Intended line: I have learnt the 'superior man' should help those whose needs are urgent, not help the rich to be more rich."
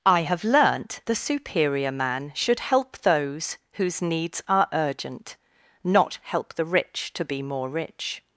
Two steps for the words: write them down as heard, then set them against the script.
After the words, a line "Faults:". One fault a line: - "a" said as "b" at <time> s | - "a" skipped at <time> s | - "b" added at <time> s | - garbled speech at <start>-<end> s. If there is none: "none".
I have learnt the 'superior man' should help those whose needs are urgent, not help the rich to be more rich."
Faults:
none